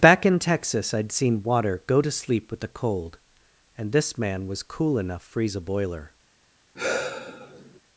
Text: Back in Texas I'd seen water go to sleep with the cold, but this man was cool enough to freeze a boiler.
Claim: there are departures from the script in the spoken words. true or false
true